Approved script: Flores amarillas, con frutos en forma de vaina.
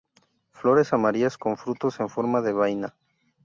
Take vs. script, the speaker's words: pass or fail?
pass